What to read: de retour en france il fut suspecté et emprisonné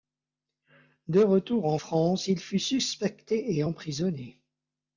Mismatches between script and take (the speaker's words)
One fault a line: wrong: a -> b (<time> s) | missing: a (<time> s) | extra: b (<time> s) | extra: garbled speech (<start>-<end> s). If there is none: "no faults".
no faults